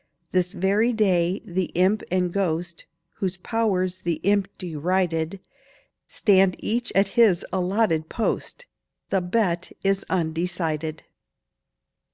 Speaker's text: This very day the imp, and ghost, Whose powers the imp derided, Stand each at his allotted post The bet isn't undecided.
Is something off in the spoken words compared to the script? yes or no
yes